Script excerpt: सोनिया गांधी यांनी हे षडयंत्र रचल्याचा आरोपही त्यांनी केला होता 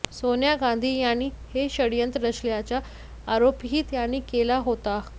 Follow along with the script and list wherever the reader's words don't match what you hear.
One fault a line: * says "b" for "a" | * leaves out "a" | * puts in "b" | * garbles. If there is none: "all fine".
all fine